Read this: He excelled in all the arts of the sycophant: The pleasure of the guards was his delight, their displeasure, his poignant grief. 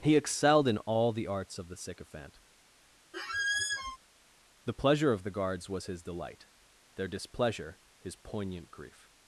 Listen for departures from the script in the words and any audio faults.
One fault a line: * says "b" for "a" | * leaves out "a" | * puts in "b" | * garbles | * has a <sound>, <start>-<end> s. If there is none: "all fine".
* has a squeak, 3.1-4.0 s